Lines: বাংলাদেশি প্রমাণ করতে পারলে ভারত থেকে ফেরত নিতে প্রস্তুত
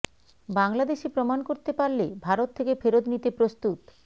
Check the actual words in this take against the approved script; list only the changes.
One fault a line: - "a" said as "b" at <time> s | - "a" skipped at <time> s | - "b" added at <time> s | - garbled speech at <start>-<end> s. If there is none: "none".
none